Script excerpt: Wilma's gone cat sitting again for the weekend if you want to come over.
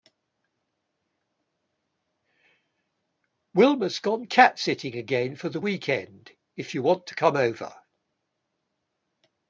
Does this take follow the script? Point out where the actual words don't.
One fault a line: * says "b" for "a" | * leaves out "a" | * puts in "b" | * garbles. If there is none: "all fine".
all fine